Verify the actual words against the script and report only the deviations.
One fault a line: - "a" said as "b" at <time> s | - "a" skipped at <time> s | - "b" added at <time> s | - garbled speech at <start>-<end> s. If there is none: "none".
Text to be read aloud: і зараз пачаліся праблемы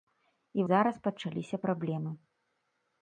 none